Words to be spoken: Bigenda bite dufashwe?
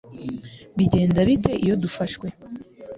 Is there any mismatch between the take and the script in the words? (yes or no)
yes